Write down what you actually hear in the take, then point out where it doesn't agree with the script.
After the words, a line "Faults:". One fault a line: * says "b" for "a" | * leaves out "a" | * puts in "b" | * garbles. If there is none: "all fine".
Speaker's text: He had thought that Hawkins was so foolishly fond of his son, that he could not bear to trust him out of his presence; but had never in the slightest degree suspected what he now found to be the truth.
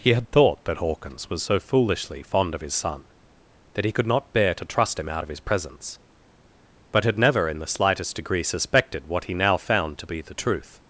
He had thought that Hawkins was so foolishly fond of his son, that he could not bear to trust him out of his presence; but had never in the slightest degree suspected what he now found to be the truth.
Faults:
all fine